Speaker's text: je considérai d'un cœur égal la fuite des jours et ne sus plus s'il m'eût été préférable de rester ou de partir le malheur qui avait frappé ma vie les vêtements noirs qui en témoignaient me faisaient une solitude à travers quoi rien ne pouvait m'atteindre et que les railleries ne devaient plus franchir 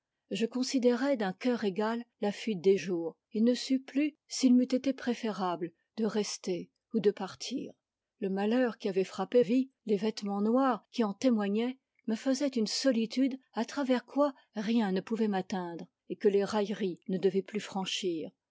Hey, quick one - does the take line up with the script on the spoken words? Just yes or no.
no